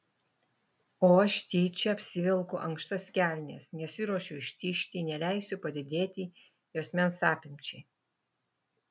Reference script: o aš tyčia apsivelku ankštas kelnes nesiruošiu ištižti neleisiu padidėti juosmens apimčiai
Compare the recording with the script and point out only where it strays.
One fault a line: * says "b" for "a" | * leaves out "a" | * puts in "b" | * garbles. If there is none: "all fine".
all fine